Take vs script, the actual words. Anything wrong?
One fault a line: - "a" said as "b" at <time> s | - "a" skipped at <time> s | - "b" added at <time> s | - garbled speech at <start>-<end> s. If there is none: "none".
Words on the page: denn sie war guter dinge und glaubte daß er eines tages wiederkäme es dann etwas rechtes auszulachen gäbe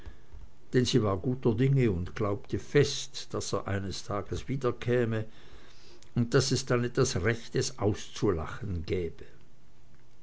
- "fest" added at 2.6 s
- "und daß" added at 6.2 s